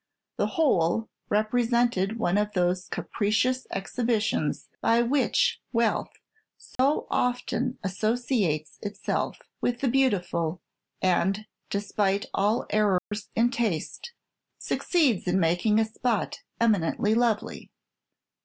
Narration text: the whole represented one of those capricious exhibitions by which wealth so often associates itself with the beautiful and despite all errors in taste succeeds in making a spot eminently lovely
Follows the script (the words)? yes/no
yes